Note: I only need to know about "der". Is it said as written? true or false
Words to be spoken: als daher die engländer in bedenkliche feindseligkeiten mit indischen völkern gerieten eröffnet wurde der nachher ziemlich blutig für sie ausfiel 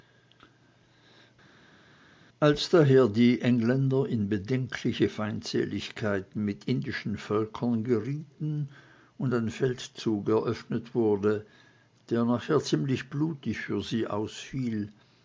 true